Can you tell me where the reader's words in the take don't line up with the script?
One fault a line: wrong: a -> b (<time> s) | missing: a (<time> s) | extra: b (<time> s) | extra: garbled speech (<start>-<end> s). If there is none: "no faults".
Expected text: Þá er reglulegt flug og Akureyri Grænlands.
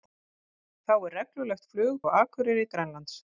no faults